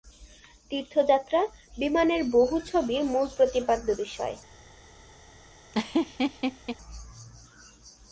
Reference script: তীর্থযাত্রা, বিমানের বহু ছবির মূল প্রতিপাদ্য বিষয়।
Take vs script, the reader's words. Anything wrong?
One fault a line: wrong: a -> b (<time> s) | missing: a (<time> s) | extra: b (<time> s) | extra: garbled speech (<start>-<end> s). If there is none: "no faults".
no faults